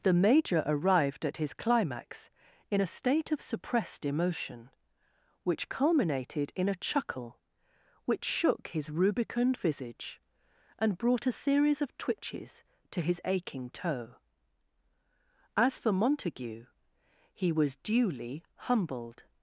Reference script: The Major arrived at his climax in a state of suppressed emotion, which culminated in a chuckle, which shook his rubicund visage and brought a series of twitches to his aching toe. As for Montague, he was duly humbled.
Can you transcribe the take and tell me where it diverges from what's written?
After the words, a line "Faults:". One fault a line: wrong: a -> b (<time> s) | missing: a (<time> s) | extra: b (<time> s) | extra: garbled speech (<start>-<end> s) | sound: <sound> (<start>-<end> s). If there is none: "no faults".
The Major arrived at his climax in a state of suppressed emotion, which culminated in a chuckle, which shook his rubicund visage and brought a series of twitches to his aching toe. As for Montague, he was duly humbled.
Faults:
no faults